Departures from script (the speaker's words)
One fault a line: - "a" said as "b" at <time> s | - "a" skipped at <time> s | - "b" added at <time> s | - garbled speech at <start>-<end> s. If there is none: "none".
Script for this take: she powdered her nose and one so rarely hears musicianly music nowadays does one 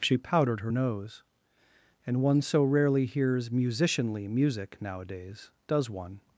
none